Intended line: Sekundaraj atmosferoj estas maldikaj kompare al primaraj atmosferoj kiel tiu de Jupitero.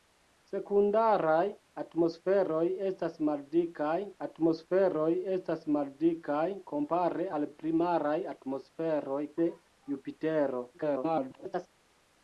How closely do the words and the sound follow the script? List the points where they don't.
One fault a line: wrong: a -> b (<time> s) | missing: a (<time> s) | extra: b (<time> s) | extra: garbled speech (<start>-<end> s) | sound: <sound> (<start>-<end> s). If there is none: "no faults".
extra: atmosferoj estas maldikaj (4.2 s)
missing: kiel tiu (9.2 s)
extra: garbled speech (10.7-11.7 s)